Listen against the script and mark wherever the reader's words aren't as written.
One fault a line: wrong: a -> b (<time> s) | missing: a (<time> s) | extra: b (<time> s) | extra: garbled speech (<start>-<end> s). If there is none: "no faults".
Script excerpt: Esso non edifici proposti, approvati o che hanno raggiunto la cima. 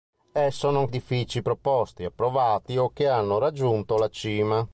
no faults